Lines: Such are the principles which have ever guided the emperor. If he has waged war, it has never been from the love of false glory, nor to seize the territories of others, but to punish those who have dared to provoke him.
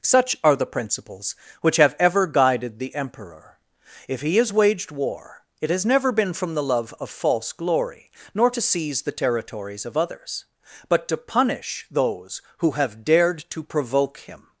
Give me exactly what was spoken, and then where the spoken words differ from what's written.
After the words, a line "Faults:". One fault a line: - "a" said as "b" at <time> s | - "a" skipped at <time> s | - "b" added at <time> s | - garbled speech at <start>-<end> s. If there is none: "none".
Such are the principles which have ever guided the emperor. If he has waged war, it has never been from the love of false glory, nor to seize the territories of others, but to punish those who have dared to provoke him.
Faults:
none